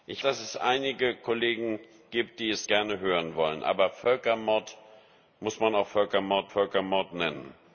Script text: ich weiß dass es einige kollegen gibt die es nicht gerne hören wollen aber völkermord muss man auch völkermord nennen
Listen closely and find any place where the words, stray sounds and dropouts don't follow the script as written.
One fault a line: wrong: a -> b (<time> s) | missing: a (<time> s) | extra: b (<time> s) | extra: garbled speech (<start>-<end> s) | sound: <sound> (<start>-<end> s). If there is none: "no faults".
missing: weiß (0.2 s)
missing: nicht (2.7 s)
extra: völkermord (6.5 s)